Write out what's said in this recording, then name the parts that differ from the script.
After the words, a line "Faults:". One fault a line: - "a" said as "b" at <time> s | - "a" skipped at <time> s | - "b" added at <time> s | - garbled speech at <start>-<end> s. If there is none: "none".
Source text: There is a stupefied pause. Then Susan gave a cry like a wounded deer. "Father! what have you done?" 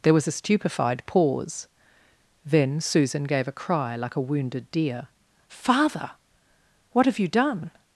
There was a stupefied pause. Then Susan gave a cry like a wounded deer. "Father! what have you done?"
Faults:
- "is" said as "was" at 0.1 s